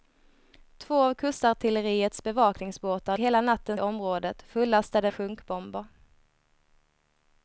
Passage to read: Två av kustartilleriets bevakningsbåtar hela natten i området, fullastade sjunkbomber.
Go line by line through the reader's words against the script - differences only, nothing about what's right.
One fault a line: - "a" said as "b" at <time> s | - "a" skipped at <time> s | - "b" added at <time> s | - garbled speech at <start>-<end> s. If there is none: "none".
none